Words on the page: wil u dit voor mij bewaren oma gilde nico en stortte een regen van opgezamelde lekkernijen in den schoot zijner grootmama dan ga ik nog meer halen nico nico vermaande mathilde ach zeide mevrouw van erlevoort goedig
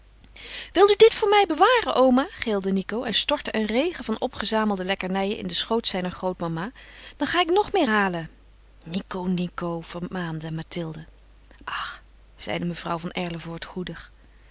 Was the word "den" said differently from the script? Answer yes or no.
no